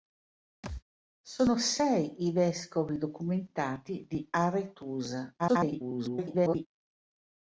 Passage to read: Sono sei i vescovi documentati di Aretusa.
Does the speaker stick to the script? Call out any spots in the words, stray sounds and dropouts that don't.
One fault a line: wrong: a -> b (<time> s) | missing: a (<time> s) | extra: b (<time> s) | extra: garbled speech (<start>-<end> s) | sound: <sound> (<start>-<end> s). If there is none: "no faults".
sound: thud (0.6-0.8 s)
extra: garbled speech (5.4-6.7 s)